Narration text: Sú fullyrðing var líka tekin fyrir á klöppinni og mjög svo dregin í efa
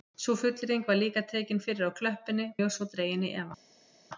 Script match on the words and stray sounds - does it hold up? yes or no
no